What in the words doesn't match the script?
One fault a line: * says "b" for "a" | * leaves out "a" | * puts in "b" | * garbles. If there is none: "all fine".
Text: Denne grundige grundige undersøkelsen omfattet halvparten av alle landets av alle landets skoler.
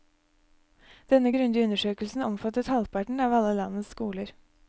* leaves out "grundige"
* leaves out "av alle landets"